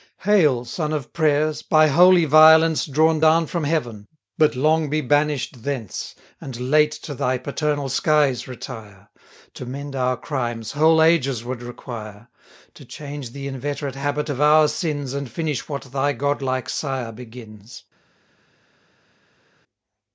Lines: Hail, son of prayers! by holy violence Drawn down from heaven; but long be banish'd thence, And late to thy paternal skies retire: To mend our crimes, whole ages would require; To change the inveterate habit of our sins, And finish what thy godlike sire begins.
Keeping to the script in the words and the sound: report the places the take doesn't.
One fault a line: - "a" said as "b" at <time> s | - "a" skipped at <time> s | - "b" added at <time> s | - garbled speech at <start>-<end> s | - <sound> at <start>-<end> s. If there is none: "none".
none